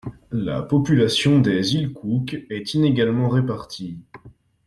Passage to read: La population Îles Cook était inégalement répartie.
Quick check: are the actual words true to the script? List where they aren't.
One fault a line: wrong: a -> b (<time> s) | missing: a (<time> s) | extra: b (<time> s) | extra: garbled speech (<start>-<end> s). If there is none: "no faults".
extra: des (1.4 s)
wrong: était -> est (2.5 s)